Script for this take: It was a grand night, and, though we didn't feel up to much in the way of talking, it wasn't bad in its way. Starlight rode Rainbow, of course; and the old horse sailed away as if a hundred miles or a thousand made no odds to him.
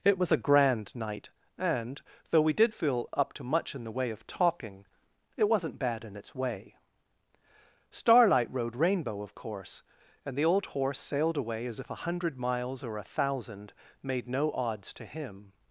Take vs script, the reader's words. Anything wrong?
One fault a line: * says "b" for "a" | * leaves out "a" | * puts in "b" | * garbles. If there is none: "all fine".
* says "did" for "didn't"